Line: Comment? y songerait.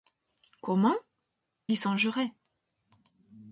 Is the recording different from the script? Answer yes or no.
no